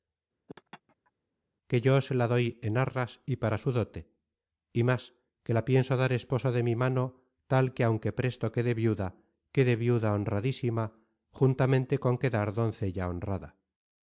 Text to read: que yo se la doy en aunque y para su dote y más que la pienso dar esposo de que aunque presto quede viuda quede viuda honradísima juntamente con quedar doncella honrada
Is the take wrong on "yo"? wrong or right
right